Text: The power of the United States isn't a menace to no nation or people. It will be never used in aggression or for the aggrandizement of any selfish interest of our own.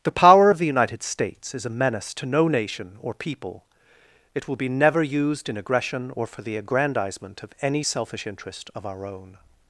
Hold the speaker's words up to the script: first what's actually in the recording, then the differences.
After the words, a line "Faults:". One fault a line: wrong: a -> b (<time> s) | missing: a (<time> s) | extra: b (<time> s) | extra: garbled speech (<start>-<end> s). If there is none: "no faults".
The power of the United States is a menace to no nation or people. It will be never used in aggression or for the aggrandizement of any selfish interest of our own.
Faults:
wrong: isn't -> is (1.5 s)